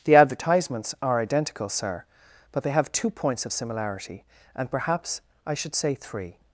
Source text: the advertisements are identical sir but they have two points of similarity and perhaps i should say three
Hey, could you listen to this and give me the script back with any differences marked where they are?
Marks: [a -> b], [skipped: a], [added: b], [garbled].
the advertisements are identical sir but they have two points of similarity and perhaps i should say three